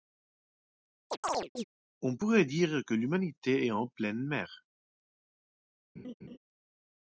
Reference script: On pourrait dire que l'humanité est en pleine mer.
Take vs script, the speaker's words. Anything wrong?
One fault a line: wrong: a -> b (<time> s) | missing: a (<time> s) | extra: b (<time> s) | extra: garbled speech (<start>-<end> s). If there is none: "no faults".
no faults